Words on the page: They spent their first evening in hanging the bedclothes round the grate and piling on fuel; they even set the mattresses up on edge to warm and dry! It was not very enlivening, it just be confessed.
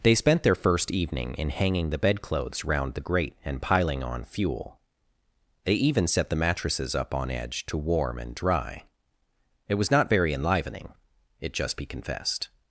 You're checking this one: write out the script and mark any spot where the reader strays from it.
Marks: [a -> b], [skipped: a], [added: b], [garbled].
They spent their first evening in hanging the bedclothes round the grate and piling on fuel; they even set the mattresses up on edge to warm and dry! It was not very enlivening, it just be confessed.